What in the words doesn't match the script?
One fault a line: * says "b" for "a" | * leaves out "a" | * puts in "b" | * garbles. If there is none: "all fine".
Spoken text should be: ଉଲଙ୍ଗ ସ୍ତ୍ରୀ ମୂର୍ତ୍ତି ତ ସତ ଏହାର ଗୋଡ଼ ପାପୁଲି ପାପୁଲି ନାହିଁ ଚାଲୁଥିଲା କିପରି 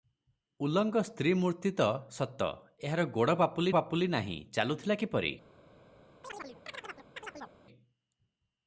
all fine